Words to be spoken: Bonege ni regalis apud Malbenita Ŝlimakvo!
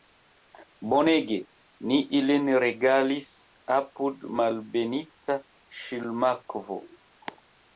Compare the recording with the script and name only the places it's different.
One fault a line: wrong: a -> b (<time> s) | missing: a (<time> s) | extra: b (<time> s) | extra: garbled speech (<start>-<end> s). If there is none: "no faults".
extra: ilin (2.2 s)